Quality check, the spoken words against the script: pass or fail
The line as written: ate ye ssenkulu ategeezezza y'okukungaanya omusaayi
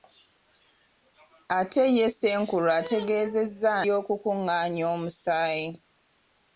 pass